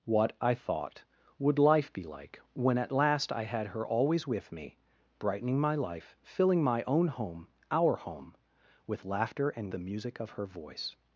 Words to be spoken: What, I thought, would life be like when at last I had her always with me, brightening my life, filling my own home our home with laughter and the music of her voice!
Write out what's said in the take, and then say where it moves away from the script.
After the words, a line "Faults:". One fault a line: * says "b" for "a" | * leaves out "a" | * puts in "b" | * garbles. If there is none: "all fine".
What, I thought, would life be like when at last I had her always with me, brightening my life, filling my own home our home with laughter and the music of her voice!
Faults:
all fine